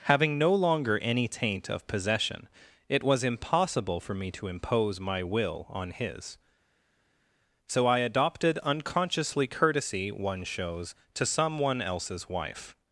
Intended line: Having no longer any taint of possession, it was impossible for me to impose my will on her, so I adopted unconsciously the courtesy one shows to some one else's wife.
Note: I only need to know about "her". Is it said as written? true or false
false